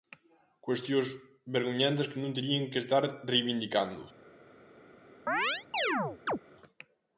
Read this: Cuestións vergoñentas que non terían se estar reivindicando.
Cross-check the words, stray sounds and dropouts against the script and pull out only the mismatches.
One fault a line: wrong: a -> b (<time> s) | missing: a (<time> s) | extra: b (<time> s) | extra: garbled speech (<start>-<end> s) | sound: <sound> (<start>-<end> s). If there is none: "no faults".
wrong: se -> que (2.7 s)
sound: chirp (5.3-6.4 s)